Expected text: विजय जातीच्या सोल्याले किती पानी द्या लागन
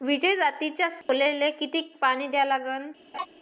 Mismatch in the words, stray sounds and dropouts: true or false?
true